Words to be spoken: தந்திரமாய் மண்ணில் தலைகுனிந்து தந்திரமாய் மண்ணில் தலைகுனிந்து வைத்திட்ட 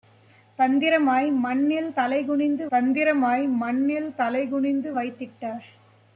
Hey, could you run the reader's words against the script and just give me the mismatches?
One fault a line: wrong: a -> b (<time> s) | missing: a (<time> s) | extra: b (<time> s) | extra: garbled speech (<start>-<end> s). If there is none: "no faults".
no faults